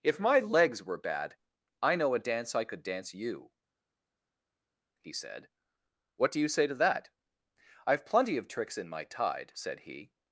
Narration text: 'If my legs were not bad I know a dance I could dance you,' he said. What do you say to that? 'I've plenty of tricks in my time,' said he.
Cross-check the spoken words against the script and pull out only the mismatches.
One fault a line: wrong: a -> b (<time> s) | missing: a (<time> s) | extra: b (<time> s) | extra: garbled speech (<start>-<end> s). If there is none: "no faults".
missing: not (1.0 s)
wrong: time -> tide (9.0 s)